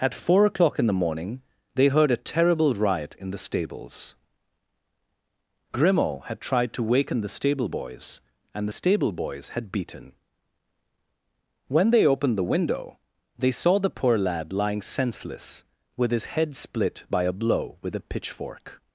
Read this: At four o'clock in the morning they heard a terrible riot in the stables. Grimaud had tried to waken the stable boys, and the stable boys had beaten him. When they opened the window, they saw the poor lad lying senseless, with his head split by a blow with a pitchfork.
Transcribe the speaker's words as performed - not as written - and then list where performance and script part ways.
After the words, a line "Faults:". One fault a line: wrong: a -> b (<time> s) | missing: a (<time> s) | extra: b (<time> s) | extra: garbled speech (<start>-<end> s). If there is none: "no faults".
At four o'clock in the morning they heard a terrible riot in the stables. Grimaud had tried to waken the stable boys, and the stable boys had beaten. When they opened the window, they saw the poor lad lying senseless, with his head split by a blow with a pitchfork.
Faults:
missing: him (10.1 s)